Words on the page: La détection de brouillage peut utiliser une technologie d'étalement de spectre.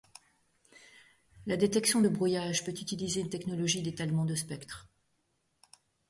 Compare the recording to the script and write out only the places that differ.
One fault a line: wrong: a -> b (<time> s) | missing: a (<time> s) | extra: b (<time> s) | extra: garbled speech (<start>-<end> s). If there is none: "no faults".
no faults